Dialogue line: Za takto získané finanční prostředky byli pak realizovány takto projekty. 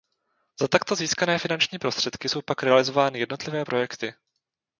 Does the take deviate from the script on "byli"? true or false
true